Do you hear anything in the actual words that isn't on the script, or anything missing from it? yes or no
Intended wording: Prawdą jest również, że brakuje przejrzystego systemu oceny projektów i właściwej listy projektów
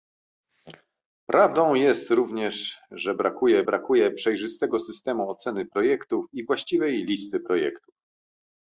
yes